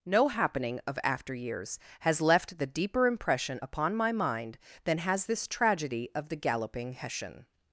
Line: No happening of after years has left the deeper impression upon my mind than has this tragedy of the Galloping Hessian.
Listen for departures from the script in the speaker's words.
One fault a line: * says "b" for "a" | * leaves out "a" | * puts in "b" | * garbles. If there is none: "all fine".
all fine